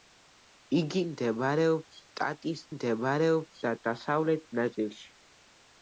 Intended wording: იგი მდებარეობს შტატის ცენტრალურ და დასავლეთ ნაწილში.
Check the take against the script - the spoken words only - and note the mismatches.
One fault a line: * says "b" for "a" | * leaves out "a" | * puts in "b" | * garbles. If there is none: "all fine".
* says "მდებარეობს" for "ცენტრალურ"